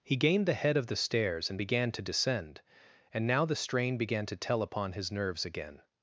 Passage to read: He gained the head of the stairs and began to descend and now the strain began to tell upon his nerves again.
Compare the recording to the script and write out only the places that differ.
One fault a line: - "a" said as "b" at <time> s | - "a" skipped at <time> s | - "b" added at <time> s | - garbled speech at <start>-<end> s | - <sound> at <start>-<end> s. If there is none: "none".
none